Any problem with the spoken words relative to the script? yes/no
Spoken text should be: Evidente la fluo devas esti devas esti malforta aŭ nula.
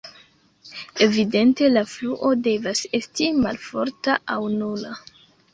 yes